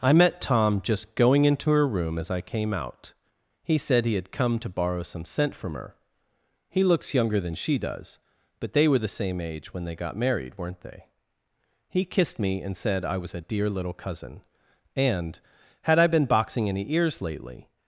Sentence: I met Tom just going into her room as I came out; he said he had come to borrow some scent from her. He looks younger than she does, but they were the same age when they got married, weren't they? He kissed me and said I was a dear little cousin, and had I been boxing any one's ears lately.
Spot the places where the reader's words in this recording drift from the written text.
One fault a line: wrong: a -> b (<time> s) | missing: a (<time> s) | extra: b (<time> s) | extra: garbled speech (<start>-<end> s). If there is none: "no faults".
missing: one's (16.9 s)